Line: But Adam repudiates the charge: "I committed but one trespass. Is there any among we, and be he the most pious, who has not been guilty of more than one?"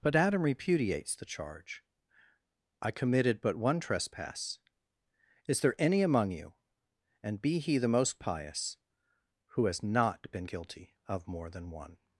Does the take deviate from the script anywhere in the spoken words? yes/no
yes